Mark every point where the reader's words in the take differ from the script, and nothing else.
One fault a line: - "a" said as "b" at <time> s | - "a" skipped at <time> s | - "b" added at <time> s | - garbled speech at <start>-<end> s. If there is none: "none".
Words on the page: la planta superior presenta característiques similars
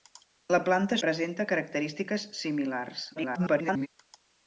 - "superior" skipped at 1.0 s
- garbled speech at 3.2-3.9 s